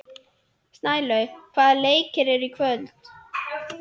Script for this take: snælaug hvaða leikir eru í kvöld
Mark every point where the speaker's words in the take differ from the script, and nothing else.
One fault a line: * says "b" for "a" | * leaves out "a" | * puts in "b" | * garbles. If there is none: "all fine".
all fine